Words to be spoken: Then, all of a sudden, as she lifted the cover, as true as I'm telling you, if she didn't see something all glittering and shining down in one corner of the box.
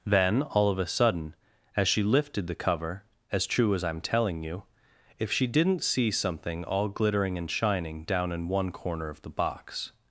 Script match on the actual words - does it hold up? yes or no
yes